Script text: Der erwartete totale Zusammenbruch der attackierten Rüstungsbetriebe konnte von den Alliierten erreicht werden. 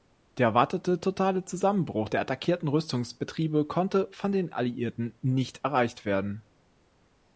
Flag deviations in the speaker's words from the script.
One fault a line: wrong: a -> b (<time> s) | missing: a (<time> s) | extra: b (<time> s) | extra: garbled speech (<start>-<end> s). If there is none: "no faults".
extra: nicht (5.2 s)